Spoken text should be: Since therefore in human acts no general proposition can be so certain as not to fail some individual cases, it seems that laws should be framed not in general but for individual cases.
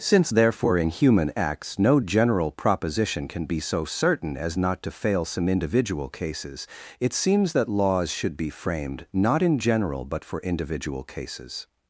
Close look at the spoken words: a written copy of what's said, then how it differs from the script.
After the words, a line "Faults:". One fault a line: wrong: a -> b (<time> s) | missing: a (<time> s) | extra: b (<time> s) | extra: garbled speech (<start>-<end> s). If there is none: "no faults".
Since therefore in human acts no general proposition can be so certain as not to fail some individual cases, it seems that laws should be framed not in general but for individual cases.
Faults:
no faults